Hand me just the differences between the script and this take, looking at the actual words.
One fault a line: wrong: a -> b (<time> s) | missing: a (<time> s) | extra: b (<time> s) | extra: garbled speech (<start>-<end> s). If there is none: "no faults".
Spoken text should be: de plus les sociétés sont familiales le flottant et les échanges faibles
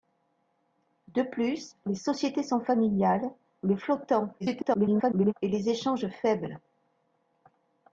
extra: garbled speech (4.4-5.3 s)